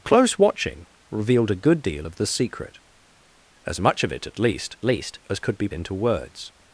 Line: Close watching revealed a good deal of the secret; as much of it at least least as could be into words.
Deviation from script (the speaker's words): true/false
false